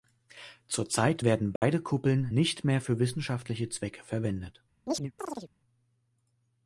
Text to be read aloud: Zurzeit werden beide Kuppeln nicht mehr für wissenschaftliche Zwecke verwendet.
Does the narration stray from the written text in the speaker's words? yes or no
no